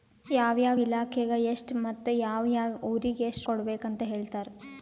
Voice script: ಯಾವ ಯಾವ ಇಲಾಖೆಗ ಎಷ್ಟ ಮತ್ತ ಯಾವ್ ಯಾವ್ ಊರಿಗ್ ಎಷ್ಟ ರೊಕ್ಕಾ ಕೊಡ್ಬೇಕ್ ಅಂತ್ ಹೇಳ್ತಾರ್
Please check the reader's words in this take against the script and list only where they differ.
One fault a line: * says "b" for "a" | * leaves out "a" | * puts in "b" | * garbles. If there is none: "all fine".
* leaves out "ರೊಕ್ಕಾ"